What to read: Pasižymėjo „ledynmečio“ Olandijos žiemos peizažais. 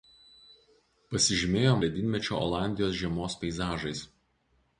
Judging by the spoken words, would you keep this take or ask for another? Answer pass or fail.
pass